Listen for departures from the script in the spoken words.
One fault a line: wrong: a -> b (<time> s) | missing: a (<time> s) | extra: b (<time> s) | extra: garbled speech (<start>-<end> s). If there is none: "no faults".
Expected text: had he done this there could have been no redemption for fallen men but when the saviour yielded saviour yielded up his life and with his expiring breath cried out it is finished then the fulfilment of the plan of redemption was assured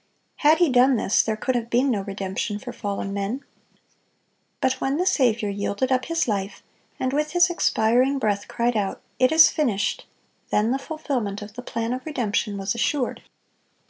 missing: saviour yielded (5.9 s)